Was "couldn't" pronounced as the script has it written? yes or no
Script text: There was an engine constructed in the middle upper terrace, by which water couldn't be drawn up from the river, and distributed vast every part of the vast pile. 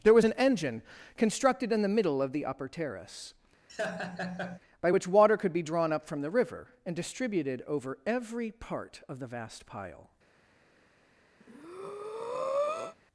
no